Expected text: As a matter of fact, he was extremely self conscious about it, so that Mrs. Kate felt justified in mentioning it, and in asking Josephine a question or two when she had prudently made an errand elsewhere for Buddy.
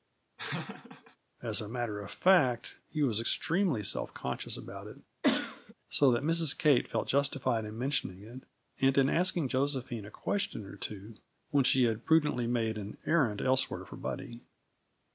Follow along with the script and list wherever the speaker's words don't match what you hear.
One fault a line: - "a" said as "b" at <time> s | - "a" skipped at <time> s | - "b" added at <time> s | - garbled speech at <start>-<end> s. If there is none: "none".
none